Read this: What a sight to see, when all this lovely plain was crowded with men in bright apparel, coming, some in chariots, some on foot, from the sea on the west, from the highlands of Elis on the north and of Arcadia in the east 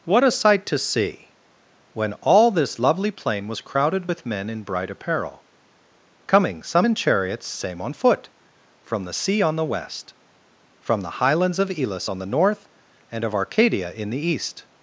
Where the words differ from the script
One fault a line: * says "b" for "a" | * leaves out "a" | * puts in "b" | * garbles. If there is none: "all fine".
* says "same" for "some"